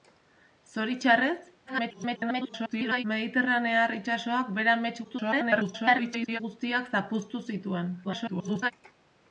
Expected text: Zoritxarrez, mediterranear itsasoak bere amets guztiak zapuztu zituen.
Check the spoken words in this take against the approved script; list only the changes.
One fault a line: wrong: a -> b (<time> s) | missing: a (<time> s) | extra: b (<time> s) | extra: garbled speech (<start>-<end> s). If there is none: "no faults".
extra: garbled speech (1.7-3.0 s)
extra: garbled speech (5.0-6.4 s)
extra: garbled speech (8.0-8.7 s)